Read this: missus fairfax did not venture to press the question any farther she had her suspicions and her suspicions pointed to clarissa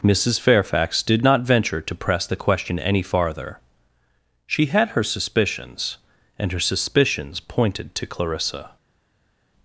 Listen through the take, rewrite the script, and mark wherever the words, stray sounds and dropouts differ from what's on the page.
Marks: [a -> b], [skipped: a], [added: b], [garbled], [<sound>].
missus fairfax did not venture to press the question any farther she had her suspicions and her suspicions pointed to clarissa